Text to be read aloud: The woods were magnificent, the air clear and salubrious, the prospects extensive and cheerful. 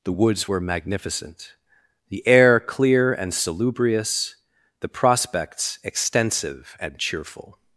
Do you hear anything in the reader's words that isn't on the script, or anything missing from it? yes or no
no